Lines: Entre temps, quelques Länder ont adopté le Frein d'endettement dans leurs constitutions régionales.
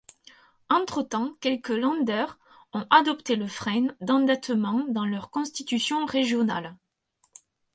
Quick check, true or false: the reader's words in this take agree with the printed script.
true